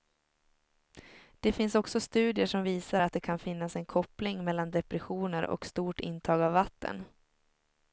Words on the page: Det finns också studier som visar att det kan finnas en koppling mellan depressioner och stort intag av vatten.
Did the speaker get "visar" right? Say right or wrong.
right